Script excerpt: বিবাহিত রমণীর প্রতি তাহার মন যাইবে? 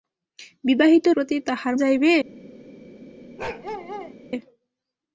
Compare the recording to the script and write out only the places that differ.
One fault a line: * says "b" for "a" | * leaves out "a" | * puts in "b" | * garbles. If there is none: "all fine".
* leaves out "রমণীর"
* leaves out "মন"